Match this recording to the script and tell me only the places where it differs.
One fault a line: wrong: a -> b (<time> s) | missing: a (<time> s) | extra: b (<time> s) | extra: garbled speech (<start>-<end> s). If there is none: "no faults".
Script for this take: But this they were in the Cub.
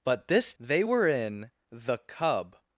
no faults